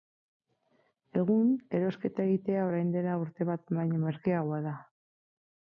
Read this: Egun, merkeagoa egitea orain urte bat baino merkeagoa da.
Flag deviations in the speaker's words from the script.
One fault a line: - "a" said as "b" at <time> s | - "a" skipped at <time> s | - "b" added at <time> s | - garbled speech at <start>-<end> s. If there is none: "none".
- "merkeagoa" said as "erosketa" at 1.8 s
- "dela" added at 3.0 s